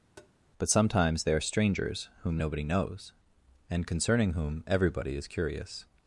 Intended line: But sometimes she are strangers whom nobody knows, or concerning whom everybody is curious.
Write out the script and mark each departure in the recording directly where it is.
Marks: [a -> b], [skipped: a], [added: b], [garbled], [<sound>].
[tap] But sometimes [she -> they] are strangers whom nobody knows, [or -> and] concerning whom everybody is curious.